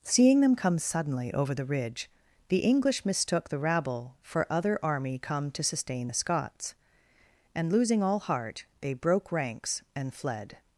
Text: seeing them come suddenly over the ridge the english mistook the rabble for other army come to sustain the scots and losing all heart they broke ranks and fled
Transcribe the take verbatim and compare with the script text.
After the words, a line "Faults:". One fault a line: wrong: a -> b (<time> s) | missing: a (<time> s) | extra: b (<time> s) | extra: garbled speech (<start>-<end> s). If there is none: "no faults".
seeing them come suddenly over the ridge the english mistook the rabble for other army come to sustain the scots and losing all heart they broke ranks and fled
Faults:
no faults